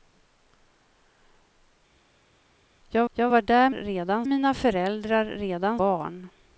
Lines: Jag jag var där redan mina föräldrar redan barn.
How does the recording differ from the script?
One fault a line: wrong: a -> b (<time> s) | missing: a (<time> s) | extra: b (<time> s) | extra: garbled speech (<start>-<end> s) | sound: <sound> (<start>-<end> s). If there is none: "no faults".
no faults